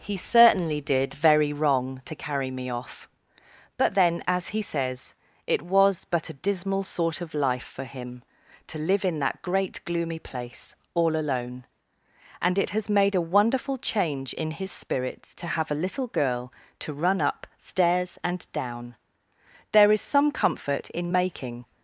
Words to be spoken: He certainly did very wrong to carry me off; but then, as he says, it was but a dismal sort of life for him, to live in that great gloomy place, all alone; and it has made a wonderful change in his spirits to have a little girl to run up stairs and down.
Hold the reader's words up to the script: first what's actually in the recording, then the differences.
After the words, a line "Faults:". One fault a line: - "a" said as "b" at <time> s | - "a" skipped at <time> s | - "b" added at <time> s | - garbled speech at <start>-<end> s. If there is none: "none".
He certainly did very wrong to carry me off; but then, as he says, it was but a dismal sort of life for him, to live in that great gloomy place, all alone; and it has made a wonderful change in his spirits to have a little girl to run up stairs and down. There is some comfort in making
Faults:
- "There is some comfort in making" added at 19.7 s